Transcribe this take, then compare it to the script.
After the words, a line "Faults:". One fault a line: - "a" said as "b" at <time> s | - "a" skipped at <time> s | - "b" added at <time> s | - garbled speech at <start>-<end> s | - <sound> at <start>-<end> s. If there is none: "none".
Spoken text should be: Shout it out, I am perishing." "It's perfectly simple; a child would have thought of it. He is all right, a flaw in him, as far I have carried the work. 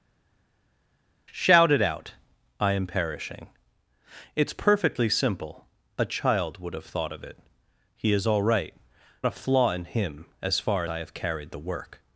Shout it out, I am perishing." "It's perfectly simple; a child would have thought of it. He is all right, a flaw in him, as far I have carried the work.
Faults:
none